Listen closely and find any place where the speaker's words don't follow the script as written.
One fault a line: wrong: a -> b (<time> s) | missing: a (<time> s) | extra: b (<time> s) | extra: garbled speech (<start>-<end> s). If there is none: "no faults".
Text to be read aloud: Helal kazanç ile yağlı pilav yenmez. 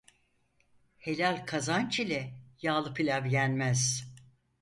no faults